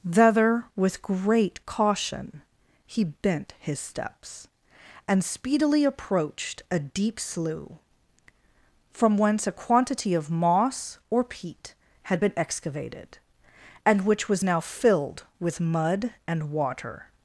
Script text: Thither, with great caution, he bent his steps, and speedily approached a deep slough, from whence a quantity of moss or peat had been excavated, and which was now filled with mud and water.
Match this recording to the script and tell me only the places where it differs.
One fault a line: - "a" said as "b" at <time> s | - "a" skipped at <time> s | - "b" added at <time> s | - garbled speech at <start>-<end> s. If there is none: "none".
none